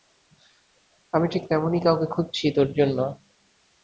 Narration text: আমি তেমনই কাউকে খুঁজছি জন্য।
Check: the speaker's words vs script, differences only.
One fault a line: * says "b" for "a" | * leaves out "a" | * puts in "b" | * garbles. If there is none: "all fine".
* puts in "ঠিক"
* puts in "তোর"